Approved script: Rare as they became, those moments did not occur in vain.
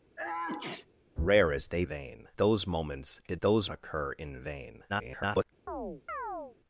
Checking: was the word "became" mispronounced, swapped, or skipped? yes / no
yes